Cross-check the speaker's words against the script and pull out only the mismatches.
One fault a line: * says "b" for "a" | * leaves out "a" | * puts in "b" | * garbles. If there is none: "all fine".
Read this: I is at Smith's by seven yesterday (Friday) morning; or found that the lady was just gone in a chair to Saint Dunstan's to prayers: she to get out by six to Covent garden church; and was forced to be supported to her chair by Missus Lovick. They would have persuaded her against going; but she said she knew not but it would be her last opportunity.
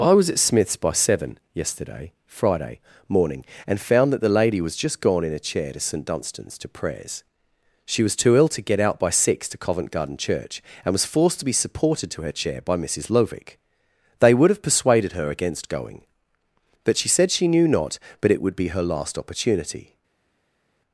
* says "was" for "is"
* says "and" for "or"
* puts in "was too ill"